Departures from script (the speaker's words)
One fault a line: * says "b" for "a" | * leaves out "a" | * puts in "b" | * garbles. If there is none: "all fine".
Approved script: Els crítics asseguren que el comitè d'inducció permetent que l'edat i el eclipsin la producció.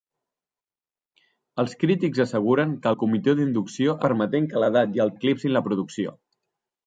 all fine